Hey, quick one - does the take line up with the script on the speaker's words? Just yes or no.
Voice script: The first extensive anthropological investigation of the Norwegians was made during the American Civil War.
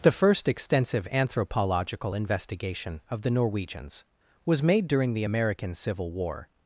yes